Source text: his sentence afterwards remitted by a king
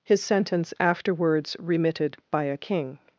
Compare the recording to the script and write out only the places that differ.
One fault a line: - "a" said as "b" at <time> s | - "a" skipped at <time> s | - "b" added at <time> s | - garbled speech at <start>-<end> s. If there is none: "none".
none